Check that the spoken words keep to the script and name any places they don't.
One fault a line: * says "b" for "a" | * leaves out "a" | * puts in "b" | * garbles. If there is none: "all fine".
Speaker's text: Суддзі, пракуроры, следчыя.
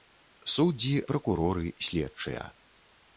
all fine